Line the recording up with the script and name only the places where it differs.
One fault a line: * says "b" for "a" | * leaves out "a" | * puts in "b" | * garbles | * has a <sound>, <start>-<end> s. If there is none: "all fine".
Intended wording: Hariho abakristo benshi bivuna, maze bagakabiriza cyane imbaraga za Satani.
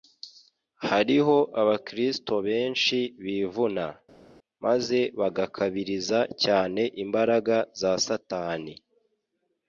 all fine